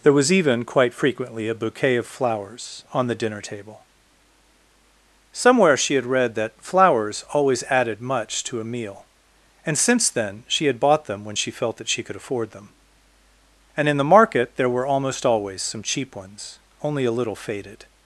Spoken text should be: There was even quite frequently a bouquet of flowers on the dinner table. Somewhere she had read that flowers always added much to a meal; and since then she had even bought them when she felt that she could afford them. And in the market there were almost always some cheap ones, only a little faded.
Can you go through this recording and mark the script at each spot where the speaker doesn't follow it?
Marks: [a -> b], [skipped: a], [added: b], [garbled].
There was even quite frequently a bouquet of flowers on the dinner table. Somewhere she had read that flowers always added much to a meal; and since then she had [skipped: even] bought them when she felt that she could afford them. And in the market there were almost always some cheap ones, only a little faded.